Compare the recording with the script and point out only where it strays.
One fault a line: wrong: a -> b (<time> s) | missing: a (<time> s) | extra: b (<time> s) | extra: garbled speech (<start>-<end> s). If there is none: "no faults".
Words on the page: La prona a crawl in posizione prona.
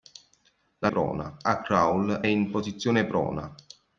no faults